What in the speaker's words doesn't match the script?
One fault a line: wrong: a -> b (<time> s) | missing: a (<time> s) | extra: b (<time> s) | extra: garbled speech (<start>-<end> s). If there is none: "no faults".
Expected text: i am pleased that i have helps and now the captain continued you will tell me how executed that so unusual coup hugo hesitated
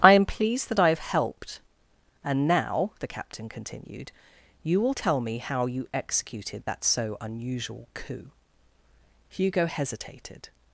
wrong: helps -> helped (1.0 s)
extra: you (5.6 s)